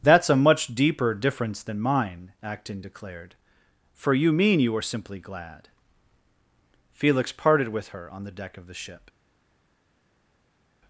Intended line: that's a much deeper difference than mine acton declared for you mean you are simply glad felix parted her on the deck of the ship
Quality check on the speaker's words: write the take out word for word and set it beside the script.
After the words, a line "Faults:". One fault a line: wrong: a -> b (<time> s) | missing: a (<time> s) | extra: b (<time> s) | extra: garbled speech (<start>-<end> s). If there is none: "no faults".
that's a much deeper difference than mine acton declared for you mean you are simply glad felix parted with her on the deck of the ship
Faults:
extra: with (7.7 s)